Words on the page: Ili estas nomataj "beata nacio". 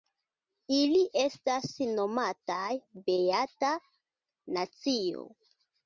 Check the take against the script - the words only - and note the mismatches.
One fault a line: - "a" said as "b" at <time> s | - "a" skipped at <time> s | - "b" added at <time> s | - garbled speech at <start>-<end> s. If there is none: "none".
none